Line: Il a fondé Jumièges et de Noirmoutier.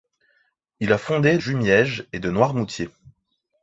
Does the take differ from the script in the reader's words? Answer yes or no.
no